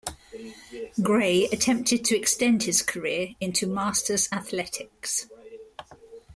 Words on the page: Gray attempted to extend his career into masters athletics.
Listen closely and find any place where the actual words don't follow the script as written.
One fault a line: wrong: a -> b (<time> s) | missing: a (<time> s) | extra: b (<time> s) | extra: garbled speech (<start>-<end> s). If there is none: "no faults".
no faults